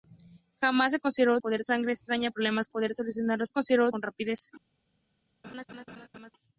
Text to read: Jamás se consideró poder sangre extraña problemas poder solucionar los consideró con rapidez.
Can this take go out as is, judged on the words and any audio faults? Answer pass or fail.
fail